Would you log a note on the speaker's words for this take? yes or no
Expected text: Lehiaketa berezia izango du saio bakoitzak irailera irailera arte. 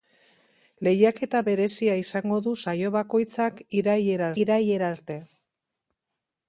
no